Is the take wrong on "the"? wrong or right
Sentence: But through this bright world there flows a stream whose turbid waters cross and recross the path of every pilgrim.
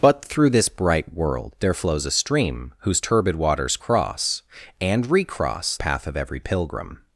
wrong